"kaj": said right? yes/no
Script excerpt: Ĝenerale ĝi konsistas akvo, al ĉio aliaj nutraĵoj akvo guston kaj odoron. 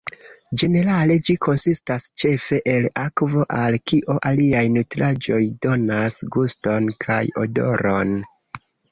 yes